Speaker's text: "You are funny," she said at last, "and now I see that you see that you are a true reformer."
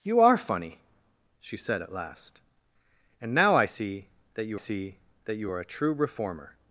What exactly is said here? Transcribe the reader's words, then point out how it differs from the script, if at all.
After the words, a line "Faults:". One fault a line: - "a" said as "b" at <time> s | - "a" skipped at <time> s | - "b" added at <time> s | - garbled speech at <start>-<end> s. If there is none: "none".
"You are funny," she said at last, "and now I see that you see that you are a true reformer."
Faults:
none